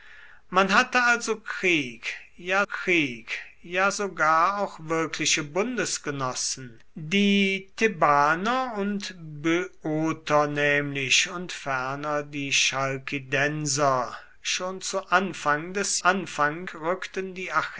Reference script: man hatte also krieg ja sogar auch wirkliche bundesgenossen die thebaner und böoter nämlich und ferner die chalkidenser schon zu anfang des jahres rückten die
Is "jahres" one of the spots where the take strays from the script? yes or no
yes